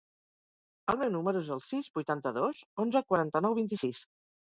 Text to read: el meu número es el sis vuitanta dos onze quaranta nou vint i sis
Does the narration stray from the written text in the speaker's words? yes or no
no